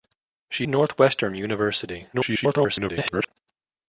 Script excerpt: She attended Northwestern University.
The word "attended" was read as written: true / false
false